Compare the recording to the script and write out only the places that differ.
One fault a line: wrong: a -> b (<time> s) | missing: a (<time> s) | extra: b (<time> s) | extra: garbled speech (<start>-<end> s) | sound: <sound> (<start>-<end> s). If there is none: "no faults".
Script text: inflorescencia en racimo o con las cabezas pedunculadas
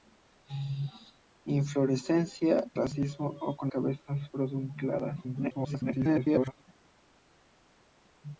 missing: en (2.6 s)
missing: las (3.7 s)
extra: garbled speech (5.2-6.6 s)